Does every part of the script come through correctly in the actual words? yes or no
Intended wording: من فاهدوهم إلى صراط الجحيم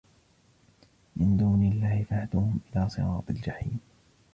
no